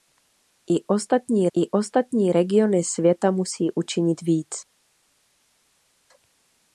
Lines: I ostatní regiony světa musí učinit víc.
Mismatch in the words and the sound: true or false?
true